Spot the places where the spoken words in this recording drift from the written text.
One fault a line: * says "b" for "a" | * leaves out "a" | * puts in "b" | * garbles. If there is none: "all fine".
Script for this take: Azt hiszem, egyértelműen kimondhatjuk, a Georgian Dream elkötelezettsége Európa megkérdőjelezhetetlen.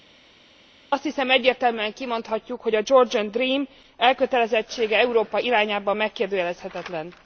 * puts in "hogy"
* puts in "irányában"